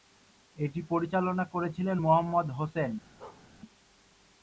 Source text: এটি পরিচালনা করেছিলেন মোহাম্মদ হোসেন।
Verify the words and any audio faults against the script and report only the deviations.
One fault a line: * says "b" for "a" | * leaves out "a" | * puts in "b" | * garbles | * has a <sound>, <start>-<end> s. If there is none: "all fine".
* has a bark, 3.2-3.5 s